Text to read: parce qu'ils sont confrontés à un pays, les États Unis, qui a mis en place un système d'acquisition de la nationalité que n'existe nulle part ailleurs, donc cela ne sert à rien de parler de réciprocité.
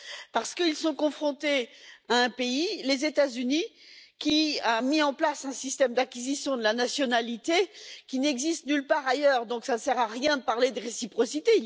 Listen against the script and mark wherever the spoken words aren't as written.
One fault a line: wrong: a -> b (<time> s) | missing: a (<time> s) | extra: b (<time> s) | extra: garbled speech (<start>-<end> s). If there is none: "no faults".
wrong: que -> qui (8.1 s)